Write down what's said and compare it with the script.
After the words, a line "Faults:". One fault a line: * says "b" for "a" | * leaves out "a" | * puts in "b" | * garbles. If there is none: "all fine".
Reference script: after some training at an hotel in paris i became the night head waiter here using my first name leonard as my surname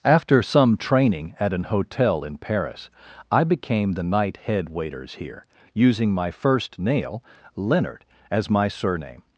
after some training at an hotel in paris i became the night head waiters here using my first nail leonard as my surname
Faults:
* says "waiters" for "waiter"
* says "nail" for "name"